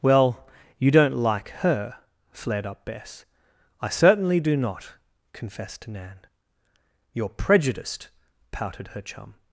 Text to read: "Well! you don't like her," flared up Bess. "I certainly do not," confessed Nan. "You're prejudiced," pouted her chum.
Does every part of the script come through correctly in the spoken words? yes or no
yes